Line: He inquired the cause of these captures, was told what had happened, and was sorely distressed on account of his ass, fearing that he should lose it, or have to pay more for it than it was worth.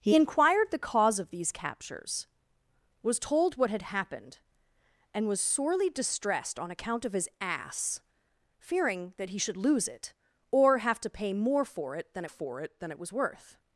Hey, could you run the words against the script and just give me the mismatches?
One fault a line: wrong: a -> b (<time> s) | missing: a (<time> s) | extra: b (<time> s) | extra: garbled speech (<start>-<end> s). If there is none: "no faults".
extra: for it than (12.3 s)